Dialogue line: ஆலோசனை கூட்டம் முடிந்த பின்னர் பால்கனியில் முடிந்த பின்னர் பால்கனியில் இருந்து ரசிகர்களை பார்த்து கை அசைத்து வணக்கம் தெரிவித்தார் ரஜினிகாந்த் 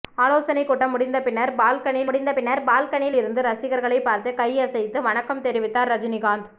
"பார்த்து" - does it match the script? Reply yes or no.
yes